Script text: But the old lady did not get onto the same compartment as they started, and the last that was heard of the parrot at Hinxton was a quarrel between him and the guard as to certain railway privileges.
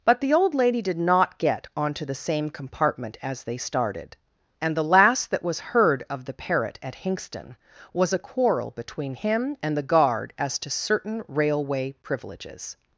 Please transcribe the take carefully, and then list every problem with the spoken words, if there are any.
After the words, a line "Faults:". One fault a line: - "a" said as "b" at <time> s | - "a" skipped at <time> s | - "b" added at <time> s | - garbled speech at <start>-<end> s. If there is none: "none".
But the old lady did not get onto the same compartment as they started, and the last that was heard of the parrot at Hinxton was a quarrel between him and the guard as to certain railway privileges.
Faults:
none